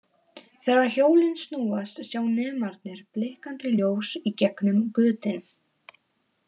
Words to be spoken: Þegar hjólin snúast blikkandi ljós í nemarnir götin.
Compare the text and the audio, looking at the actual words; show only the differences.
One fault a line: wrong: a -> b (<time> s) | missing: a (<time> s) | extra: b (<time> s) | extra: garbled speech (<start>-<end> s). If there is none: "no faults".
extra: sjá nemarnir (2.1 s)
wrong: nemarnir -> gegnum (4.4 s)